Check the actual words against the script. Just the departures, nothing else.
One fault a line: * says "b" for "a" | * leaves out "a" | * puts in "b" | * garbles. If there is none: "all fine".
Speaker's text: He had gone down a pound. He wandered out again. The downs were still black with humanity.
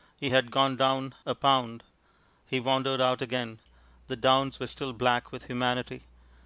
all fine